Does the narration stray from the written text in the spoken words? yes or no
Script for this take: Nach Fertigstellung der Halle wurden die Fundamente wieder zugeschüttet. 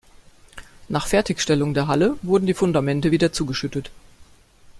no